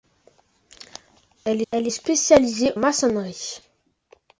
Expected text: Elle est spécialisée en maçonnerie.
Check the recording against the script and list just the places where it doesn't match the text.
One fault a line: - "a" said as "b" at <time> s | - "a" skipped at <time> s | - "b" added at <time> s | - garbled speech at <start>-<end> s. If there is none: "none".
- "elle" added at 1.7 s
- "en" skipped at 2.7 s